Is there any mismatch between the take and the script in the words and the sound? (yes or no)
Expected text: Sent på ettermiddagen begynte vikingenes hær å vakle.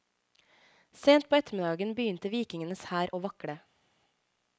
no